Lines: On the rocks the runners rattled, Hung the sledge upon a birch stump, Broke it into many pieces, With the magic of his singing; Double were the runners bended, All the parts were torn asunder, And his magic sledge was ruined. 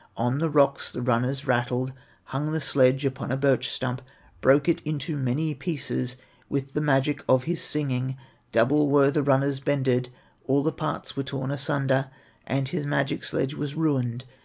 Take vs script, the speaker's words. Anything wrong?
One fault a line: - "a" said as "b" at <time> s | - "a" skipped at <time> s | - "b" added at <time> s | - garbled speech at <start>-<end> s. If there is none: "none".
none